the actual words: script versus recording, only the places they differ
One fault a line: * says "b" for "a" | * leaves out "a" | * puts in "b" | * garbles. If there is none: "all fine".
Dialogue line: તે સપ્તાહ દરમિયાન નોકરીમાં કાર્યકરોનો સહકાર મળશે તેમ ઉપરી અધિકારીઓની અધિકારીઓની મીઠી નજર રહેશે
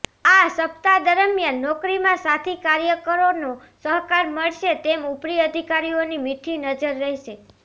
* says "આ" for "તે"
* puts in "સાથી"
* leaves out "અધિકારીઓની"